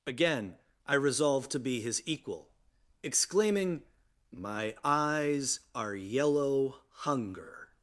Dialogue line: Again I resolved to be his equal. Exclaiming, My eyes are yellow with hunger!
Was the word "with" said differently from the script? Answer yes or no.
yes